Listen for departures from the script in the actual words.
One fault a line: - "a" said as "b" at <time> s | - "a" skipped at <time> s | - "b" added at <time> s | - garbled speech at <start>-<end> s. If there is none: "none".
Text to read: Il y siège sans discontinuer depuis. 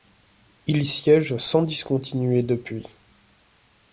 none